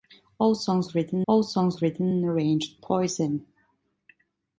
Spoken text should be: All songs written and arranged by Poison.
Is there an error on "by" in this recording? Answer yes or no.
yes